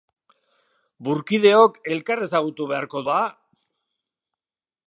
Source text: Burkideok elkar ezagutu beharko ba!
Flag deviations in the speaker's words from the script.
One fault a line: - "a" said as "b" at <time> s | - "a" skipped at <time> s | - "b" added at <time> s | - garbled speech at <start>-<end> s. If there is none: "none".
none